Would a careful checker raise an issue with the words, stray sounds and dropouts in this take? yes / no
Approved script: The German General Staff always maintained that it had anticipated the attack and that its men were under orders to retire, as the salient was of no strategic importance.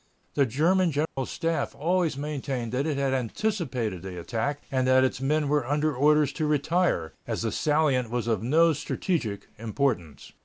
yes